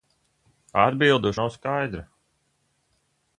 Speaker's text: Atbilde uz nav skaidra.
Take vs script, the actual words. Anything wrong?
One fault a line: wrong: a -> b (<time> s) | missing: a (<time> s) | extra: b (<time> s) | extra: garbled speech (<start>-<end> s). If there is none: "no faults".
no faults